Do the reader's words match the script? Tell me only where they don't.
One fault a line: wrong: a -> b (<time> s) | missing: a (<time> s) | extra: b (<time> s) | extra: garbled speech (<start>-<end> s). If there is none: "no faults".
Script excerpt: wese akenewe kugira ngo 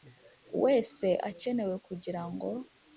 no faults